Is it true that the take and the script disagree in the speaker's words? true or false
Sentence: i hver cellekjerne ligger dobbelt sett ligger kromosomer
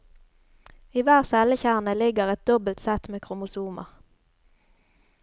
true